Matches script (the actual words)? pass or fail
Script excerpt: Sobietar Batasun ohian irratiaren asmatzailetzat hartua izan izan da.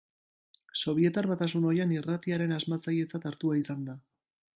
fail